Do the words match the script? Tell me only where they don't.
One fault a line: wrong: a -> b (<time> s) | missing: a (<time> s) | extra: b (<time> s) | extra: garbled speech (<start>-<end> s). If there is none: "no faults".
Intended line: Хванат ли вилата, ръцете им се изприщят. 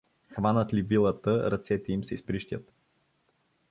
no faults